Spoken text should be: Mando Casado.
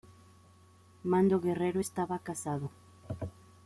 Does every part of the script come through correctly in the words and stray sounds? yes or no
no